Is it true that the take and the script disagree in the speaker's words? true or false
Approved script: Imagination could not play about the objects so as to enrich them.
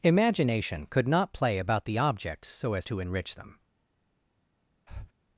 false